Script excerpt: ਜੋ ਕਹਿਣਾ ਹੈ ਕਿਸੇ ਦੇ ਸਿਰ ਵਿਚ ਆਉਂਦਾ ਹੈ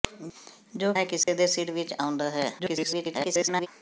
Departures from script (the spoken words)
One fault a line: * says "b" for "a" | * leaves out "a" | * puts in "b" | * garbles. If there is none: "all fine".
* leaves out "ਕਹਿਣਾ"
* garbles